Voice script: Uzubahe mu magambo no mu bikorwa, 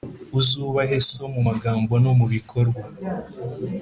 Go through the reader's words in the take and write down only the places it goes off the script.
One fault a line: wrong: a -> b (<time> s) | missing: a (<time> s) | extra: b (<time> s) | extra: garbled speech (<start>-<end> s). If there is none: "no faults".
extra: so (1.1 s)